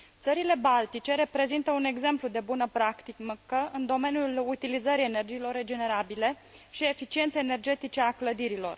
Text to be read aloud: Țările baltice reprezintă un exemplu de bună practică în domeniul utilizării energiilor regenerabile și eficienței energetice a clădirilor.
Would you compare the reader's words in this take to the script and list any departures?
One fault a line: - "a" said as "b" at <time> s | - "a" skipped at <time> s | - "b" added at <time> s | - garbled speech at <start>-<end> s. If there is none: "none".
none